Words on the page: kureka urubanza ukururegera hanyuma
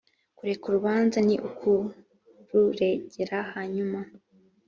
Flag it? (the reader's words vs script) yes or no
yes